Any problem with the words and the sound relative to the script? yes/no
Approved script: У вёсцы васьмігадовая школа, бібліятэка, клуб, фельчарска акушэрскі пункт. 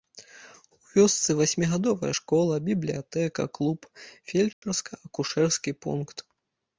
yes